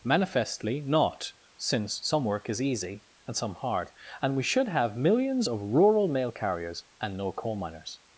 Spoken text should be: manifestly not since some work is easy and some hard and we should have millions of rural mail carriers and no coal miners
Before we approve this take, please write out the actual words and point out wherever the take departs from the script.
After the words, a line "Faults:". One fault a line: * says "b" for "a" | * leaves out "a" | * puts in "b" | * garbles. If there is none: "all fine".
manifestly not since some work is easy and some hard and we should have millions of rural mail carriers and no coal miners
Faults:
all fine